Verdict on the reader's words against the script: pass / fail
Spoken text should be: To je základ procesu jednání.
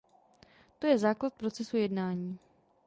pass